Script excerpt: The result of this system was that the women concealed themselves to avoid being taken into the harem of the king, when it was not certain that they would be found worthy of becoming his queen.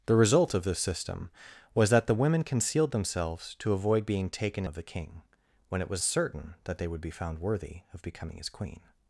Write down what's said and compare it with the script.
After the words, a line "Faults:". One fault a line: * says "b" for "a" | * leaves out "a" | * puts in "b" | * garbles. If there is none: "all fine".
The result of this system was that the women concealed themselves to avoid being taken of the king, when it was certain that they would be found worthy of becoming his queen.
Faults:
* leaves out "into the harem"
* leaves out "not"